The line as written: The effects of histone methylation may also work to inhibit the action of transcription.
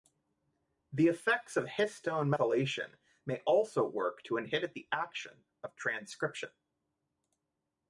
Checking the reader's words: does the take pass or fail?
pass